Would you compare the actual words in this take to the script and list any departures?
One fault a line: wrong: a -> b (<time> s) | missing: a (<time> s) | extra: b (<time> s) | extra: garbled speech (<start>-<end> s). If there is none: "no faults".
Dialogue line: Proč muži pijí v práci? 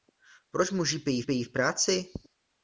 extra: pijí (1.2 s)